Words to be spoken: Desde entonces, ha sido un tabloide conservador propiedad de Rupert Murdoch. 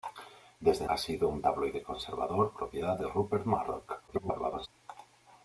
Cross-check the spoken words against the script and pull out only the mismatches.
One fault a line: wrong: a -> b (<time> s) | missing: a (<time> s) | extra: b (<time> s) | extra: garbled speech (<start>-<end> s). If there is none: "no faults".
missing: entonces (0.8 s)
extra: garbled speech (4.1-4.7 s)